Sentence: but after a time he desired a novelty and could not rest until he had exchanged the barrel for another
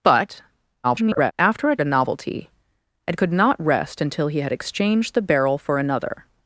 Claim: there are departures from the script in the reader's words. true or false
true